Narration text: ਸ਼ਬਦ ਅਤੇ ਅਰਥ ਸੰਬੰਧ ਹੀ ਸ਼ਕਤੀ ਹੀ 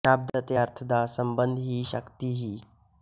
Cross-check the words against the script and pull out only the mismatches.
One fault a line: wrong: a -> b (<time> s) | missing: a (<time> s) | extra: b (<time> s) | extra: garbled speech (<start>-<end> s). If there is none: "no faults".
extra: ਦਾ (0.8 s)